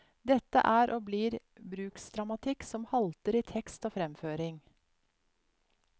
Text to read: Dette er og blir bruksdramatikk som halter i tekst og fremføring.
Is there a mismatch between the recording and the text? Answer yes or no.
no